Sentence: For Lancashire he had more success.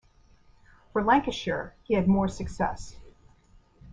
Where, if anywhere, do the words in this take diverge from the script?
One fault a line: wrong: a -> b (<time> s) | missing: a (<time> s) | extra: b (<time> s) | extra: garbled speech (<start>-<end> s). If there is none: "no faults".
no faults